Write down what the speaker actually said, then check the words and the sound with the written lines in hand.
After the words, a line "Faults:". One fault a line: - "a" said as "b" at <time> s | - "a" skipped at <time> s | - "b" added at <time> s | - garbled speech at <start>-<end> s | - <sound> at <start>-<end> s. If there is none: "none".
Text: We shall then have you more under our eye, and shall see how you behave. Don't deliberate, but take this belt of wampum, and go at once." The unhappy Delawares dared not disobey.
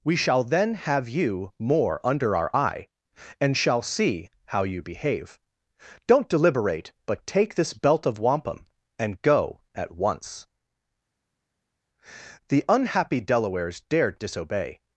We shall then have you more under our eye, and shall see how you behave. Don't deliberate, but take this belt of wampum, and go at once." The unhappy Delawares dared disobey.
Faults:
- "not" skipped at 14.2 s